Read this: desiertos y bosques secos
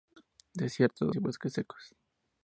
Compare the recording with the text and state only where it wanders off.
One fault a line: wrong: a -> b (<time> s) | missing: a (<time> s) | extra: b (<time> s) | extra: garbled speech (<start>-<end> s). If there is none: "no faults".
no faults